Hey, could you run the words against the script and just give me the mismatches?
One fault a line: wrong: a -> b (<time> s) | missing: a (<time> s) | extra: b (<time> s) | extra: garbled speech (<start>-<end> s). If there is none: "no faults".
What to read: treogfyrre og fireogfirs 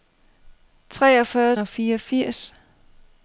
no faults